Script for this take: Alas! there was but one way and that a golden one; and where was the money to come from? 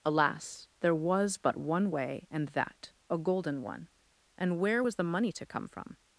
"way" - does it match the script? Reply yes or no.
yes